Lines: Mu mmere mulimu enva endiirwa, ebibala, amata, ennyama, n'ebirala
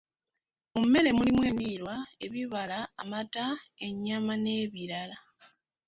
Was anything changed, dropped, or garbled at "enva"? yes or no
yes